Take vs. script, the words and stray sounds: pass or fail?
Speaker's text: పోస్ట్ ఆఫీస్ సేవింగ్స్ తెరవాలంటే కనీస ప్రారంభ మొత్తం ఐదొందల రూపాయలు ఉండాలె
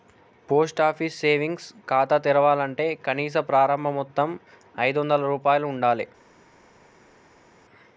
fail